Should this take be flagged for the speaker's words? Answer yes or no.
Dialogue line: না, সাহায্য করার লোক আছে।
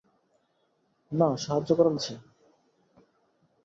yes